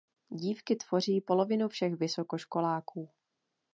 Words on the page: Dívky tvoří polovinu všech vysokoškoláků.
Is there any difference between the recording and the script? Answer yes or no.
no